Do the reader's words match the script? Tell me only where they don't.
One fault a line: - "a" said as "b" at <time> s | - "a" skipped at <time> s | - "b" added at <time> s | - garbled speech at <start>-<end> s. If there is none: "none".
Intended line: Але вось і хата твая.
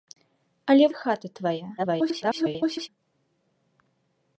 - "вось" skipped at 0.9 s
- garbled speech at 1.8-2.9 s